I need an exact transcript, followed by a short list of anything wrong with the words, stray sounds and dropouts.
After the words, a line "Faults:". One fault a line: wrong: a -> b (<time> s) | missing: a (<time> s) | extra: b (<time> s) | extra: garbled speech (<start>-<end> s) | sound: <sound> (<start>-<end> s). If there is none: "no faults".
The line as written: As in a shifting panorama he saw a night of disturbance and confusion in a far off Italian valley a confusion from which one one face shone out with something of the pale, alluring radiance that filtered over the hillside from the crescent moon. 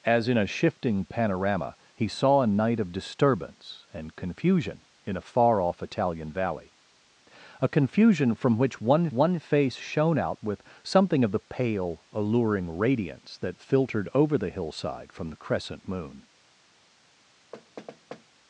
As in a shifting panorama he saw a night of disturbance and confusion in a far off Italian valley a confusion from which one one face shone out with something of the pale, alluring radiance that filtered over the hillside from the crescent moon.
Faults:
sound: thud (17.5-18.2 s)